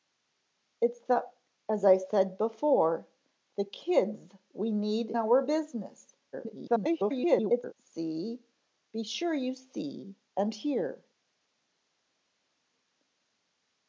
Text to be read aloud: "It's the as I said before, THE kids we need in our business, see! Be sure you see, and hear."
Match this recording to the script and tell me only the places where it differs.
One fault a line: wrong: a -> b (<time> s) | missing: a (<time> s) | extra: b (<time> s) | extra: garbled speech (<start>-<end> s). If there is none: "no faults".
missing: in (5.1 s)
extra: garbled speech (6.3-7.7 s)